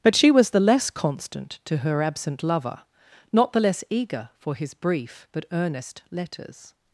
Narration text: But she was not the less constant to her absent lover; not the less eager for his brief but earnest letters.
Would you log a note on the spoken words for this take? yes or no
yes